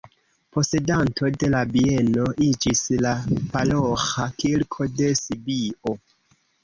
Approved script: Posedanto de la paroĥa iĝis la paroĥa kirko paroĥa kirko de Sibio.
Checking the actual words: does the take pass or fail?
fail